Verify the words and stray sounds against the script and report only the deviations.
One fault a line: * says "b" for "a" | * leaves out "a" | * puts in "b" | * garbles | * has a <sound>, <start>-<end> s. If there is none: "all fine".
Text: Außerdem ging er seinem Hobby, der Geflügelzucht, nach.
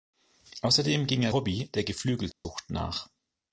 * leaves out "seinem"
* has a dropout, 2.3-2.5 s